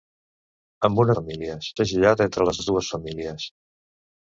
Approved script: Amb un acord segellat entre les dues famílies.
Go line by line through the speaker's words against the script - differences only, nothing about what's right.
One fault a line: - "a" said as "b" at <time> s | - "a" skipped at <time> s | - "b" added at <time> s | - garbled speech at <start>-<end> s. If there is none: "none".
- "acord" said as "famílies" at 1.2 s
- "les" added at 2.6 s